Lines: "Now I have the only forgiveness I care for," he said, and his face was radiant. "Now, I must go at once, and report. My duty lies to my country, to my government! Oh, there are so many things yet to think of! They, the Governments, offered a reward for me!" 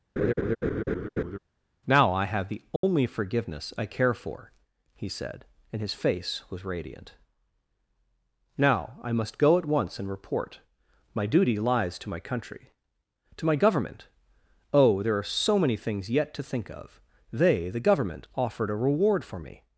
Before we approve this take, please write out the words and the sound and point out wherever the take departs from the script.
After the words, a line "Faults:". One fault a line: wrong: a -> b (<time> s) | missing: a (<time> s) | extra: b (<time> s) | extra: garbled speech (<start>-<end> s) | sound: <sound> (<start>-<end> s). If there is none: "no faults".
"Now I have the only forgiveness I care for," he said, and his face was radiant. "Now, I must go at once, and report. My duty lies to my country, to my government! Oh, there are so many things yet to think of! They, the Government, offered a reward for me!"
Faults:
sound: laugh (0.2-1.4 s)
sound: dropout (2.8-2.8 s)
wrong: Governments -> Government (17.8 s)